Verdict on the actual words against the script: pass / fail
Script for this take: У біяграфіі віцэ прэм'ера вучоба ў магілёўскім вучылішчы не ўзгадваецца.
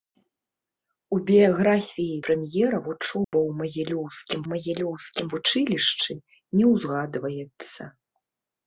fail